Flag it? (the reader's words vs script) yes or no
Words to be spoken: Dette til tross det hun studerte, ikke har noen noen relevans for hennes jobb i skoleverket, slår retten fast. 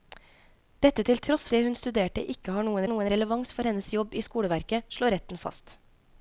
no